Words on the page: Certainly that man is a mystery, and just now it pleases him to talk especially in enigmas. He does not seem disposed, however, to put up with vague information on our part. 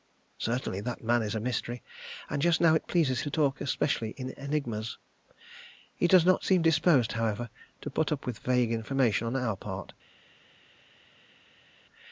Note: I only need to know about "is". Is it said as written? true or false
true